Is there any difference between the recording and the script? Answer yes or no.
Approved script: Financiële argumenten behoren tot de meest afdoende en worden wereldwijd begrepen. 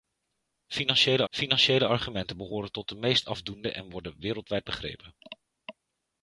yes